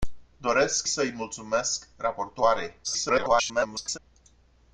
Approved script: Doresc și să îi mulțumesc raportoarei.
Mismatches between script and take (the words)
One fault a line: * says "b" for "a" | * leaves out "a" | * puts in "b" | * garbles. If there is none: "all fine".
* leaves out "și"
* garbles